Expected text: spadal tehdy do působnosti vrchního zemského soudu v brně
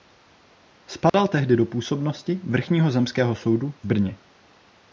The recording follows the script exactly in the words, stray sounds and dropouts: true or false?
false